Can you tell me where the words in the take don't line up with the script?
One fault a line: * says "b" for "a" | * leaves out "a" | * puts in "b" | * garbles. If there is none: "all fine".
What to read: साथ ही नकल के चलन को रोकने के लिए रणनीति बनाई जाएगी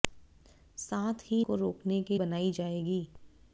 * leaves out "नकल के चलन"
* leaves out "लिए रणनीति"